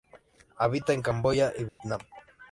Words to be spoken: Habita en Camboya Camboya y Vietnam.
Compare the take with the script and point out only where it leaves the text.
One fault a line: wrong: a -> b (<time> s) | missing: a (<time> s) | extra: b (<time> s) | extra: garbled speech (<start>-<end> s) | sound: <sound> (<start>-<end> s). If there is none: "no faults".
missing: Camboya (1.5 s)
sound: dropout (1.7-1.8 s)